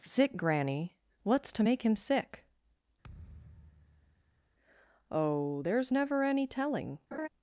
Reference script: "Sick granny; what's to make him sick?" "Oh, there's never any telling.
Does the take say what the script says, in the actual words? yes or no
yes